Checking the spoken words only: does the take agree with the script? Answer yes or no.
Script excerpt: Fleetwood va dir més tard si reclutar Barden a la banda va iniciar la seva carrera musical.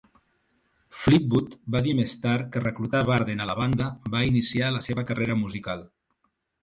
no